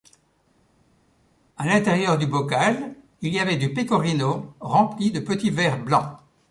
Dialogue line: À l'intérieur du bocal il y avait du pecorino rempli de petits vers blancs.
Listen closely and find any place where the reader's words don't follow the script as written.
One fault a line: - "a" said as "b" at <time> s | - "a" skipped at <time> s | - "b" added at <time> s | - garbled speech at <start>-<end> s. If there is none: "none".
none